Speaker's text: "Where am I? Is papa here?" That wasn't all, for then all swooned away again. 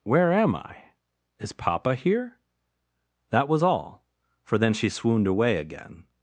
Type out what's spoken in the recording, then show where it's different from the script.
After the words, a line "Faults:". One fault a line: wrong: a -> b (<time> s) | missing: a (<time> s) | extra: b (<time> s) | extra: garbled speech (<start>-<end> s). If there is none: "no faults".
"Where am I? Is papa here?" That was all, for then she swooned away again.
Faults:
wrong: wasn't -> was (3.5 s)
wrong: all -> she (4.7 s)